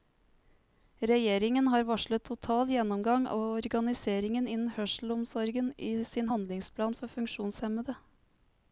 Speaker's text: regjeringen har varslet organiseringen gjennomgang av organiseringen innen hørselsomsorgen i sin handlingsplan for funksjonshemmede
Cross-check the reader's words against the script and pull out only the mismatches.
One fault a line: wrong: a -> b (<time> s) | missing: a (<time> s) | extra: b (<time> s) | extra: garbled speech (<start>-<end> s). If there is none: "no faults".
wrong: organiseringen -> total (2.3 s)